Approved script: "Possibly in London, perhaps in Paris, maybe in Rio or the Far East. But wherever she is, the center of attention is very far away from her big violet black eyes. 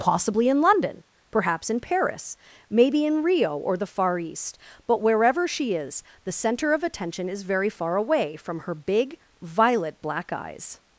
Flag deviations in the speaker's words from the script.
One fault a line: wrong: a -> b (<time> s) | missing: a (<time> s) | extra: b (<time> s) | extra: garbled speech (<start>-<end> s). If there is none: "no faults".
no faults